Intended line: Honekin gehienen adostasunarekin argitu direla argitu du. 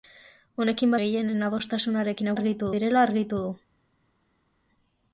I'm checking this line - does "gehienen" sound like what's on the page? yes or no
yes